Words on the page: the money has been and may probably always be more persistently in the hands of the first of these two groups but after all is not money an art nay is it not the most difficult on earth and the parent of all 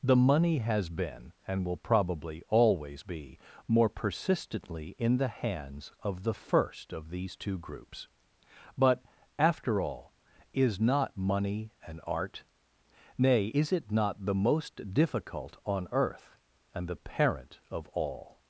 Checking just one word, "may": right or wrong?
wrong